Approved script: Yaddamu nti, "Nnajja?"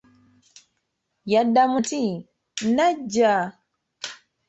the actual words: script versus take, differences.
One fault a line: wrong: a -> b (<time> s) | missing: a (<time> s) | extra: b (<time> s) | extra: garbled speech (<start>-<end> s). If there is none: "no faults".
no faults